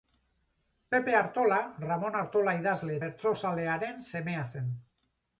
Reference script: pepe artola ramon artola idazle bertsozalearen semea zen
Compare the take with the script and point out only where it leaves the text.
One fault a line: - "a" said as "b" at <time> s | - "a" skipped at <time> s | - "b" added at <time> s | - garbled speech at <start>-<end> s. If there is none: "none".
none